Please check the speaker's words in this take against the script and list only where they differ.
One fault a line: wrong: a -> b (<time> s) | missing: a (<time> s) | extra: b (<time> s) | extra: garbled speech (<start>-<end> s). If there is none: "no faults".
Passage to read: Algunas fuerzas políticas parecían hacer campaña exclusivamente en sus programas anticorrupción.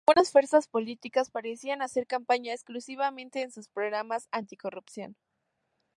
no faults